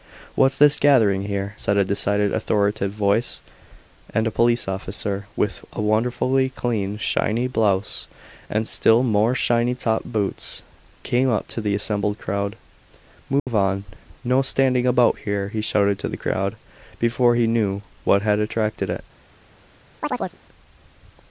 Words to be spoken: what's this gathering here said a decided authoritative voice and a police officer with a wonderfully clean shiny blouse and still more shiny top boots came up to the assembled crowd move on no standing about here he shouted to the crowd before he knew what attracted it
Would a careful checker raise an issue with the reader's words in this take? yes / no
yes